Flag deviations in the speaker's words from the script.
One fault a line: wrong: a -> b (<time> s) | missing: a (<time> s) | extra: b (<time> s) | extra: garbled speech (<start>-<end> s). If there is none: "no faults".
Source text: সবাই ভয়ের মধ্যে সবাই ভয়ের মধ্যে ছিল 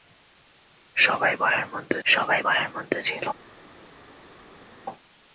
no faults